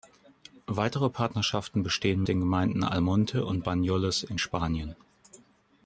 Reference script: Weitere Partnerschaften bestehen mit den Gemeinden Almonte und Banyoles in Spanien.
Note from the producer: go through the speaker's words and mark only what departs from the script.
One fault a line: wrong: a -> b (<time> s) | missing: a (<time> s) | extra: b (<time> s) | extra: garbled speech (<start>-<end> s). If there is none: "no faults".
missing: mit (2.2 s)